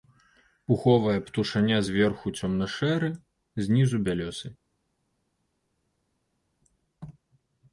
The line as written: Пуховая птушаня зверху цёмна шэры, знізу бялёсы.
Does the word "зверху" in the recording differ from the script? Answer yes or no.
no